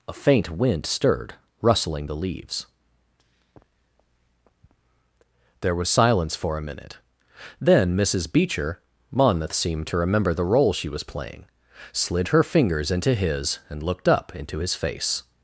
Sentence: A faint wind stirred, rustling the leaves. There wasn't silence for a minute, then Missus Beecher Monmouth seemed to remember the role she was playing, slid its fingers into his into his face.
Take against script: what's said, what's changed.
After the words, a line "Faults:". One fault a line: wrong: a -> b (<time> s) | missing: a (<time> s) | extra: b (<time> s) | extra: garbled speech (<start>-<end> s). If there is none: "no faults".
A faint wind stirred, rustling the leaves. There was silence for a minute, then Missus Beecher Monmouth seemed to remember the role she was playing, slid her fingers into his and looked up into his face.
Faults:
wrong: wasn't -> was (5.8 s)
wrong: its -> her (12.3 s)
extra: and looked up (13.7 s)